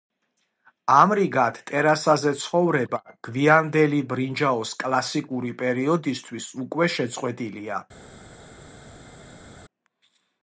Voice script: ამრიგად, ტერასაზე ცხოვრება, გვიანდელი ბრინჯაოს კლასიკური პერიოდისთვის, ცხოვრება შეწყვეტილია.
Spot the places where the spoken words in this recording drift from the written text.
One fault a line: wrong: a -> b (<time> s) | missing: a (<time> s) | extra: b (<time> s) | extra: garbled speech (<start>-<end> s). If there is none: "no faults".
wrong: ცხოვრება -> უკვე (6.7 s)